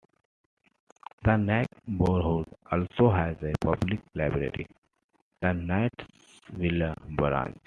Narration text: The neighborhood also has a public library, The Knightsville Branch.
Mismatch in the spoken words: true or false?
false